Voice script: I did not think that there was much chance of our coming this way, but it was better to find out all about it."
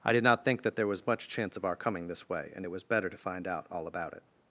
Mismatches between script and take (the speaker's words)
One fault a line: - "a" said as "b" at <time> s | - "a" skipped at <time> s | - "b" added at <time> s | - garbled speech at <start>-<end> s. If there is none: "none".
- "but" said as "and" at 2.6 s